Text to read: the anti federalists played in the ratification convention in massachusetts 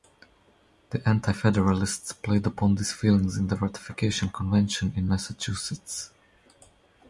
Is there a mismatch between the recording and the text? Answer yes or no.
yes